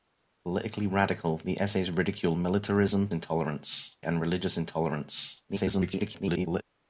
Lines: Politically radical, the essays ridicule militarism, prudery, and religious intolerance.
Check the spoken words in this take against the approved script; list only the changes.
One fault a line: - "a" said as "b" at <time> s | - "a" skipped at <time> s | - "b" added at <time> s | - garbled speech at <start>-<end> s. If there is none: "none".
- "prudery" said as "intolerance" at 3.1 s
- garbled speech at 5.5-6.6 s